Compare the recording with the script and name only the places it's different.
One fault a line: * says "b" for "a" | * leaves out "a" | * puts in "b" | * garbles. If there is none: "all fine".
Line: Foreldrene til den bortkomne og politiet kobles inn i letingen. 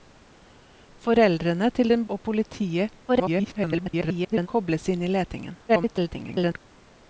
* leaves out "bortkomne"
* garbles
* garbles